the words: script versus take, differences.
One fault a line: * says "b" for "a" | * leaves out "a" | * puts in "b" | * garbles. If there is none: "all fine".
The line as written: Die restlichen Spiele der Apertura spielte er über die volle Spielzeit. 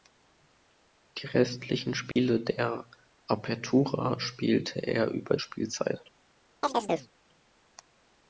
* leaves out "die volle"